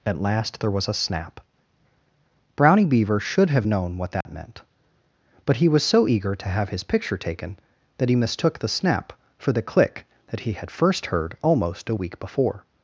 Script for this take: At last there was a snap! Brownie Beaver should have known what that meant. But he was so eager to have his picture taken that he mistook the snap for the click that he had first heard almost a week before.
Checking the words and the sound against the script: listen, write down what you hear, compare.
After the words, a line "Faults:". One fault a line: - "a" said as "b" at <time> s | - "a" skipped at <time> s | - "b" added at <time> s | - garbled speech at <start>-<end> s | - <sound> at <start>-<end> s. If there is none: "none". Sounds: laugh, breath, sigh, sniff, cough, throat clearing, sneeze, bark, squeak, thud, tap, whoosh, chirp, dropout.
At last there was a snap! Brownie Beaver should have known what that meant. But he was so eager to have his picture taken that he mistook the snap for the click that he had first heard almost a week before.
Faults:
- dropout at 4.2-4.3 s